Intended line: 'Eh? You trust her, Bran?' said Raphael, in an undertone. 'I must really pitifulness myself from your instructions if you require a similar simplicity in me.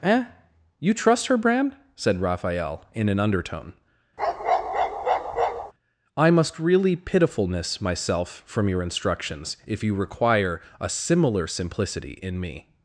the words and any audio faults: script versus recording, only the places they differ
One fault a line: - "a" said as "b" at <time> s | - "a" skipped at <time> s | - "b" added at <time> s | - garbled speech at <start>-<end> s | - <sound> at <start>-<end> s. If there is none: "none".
- bark at 4.2-5.7 s